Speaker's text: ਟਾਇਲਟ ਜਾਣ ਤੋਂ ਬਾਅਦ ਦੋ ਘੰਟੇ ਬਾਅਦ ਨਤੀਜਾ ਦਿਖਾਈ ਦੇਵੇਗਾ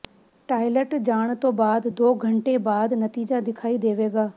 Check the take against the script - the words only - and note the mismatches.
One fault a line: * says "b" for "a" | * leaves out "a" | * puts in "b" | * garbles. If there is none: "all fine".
all fine